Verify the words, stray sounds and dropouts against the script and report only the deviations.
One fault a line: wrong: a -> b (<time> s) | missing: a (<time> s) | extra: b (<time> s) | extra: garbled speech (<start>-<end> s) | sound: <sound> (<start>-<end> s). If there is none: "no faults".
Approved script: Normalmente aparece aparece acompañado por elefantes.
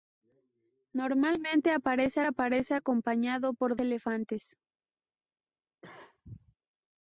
sound: cough (5.8-6.6 s)